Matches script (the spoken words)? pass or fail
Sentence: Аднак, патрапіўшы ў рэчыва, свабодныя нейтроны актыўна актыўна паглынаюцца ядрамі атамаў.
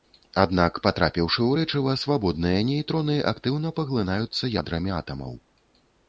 fail